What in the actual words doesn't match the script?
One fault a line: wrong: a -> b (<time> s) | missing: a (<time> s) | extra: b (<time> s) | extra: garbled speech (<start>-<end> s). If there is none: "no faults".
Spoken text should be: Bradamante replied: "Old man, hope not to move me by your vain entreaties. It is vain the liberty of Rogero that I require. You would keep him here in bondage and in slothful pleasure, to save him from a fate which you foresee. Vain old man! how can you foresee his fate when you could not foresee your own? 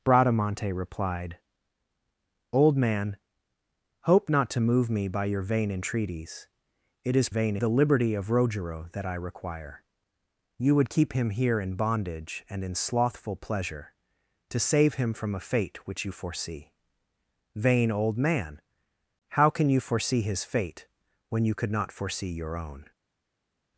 no faults